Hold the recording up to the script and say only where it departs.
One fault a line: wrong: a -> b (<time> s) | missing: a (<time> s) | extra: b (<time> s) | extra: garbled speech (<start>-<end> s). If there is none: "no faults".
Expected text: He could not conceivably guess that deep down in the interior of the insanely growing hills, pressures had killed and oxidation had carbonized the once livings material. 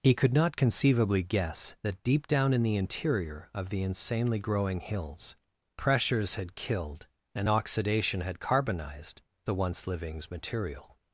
no faults